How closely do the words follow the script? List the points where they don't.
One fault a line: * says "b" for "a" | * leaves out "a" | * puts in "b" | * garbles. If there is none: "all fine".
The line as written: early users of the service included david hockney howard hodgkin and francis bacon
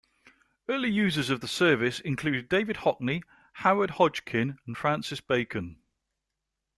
all fine